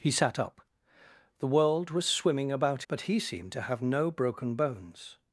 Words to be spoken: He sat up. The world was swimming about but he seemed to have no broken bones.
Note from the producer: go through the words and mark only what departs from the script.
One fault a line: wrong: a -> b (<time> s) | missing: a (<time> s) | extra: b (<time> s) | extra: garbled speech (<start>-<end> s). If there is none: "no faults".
no faults